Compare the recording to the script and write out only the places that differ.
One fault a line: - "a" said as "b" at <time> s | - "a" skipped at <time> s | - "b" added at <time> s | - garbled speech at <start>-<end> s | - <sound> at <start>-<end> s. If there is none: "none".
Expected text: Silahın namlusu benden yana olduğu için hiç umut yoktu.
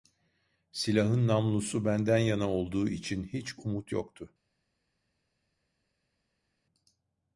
none